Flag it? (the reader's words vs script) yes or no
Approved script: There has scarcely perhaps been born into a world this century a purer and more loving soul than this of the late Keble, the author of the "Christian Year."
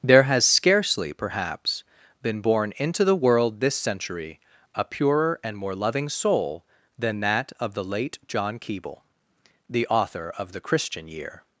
yes